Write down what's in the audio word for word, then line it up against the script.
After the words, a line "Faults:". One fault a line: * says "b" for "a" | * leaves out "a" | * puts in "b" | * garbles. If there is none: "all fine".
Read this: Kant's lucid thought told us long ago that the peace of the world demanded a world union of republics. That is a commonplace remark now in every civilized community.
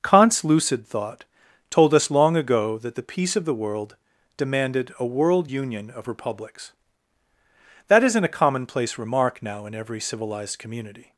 Kant's lucid thought told us long ago that the peace of the world demanded a world union of republics. That isn't a commonplace remark now in every civilized community.
Faults:
* says "isn't" for "is"